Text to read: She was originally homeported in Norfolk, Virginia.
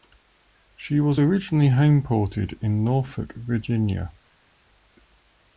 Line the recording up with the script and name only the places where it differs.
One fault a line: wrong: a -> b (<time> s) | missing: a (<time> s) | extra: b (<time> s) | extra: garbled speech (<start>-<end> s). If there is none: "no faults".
no faults